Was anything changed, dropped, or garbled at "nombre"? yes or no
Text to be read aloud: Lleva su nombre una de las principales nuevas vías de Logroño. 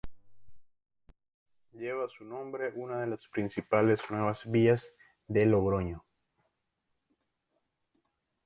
no